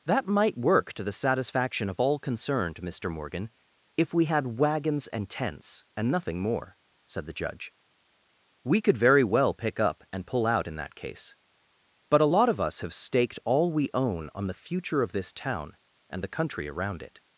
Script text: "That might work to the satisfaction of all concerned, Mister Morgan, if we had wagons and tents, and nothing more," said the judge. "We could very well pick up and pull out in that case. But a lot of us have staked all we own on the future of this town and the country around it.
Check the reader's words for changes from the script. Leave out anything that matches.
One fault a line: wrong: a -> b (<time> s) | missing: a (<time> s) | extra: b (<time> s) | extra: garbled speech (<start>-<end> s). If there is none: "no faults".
no faults